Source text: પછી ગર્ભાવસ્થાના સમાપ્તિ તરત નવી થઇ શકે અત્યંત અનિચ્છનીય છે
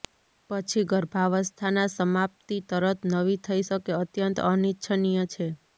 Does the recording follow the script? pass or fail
pass